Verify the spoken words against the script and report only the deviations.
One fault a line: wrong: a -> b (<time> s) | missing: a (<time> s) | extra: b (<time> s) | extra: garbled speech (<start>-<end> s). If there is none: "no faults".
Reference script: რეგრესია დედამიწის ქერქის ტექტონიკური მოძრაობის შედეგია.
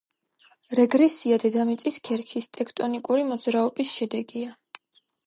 no faults